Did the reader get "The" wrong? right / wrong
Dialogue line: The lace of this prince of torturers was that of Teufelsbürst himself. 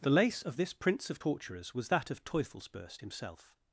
right